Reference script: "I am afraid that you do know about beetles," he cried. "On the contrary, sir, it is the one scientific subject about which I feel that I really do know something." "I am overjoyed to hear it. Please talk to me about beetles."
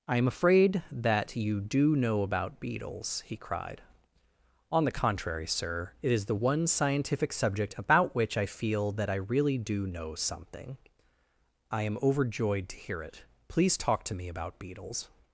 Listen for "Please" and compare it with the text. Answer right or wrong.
right